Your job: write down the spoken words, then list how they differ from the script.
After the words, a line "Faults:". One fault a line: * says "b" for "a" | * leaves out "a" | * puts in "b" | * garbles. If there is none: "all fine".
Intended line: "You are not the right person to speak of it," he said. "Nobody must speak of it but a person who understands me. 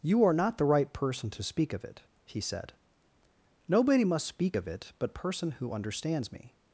"You are not the right person to speak of it," he said. "Nobody must speak of it but person who understands me.
Faults:
* leaves out "a"